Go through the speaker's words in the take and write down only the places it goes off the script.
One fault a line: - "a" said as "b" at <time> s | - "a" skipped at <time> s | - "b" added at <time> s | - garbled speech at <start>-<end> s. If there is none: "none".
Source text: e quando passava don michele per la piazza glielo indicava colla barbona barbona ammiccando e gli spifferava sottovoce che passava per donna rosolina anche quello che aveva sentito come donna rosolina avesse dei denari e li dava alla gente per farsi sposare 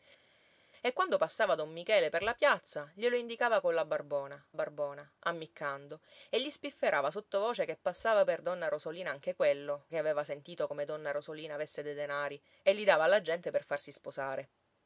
none